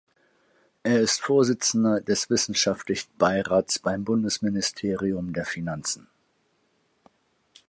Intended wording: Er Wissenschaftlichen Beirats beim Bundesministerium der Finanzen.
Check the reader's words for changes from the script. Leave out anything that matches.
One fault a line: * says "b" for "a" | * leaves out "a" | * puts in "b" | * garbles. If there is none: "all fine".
* puts in "ist Vorsitzender des"